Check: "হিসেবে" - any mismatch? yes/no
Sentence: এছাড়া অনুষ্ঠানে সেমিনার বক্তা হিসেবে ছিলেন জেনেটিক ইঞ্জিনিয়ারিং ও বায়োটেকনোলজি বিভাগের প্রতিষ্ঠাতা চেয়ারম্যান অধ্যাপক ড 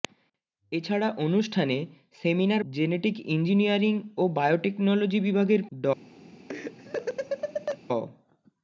yes